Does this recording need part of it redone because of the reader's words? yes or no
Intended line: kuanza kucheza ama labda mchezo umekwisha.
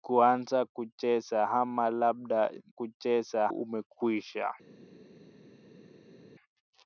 yes